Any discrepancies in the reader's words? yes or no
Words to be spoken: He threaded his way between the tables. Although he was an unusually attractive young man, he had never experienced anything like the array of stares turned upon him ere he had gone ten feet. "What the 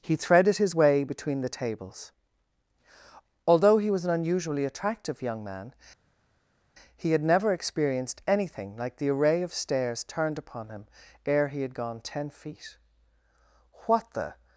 no